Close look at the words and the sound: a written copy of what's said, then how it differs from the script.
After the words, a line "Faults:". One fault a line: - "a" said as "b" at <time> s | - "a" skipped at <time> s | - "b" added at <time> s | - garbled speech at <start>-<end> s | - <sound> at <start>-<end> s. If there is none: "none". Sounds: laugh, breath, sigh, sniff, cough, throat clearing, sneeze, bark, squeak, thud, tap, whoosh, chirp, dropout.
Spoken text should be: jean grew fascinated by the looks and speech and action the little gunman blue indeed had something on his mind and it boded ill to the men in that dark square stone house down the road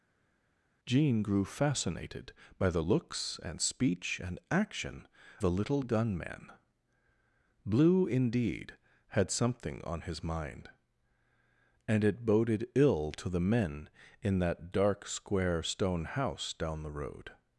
jean grew fascinated by the looks and speech and action the little gunman blue indeed had something on his mind and it boded ill to the men in that dark square stone house down the road
Faults:
none